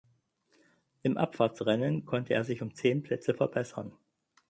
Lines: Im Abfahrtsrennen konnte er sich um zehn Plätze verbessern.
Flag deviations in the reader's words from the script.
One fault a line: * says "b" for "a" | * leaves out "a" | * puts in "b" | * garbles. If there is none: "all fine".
all fine